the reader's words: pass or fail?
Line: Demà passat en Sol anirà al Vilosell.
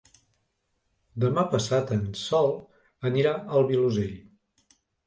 pass